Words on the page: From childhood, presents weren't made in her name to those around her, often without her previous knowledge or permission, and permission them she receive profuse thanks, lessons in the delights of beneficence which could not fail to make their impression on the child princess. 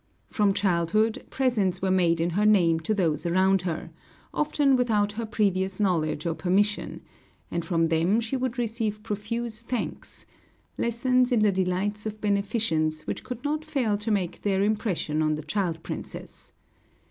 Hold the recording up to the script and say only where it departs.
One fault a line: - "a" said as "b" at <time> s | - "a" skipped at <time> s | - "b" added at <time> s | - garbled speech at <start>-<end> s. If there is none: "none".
- "weren't" said as "were" at 1.8 s
- "permission" said as "from" at 7.6 s
- "would" added at 8.3 s